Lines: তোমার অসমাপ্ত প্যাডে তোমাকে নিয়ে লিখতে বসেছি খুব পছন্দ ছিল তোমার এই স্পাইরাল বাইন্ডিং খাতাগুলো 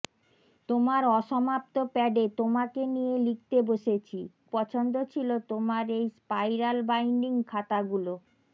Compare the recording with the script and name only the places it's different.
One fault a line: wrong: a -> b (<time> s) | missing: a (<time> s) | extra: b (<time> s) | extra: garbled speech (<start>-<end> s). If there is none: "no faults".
missing: খুব (4.2 s)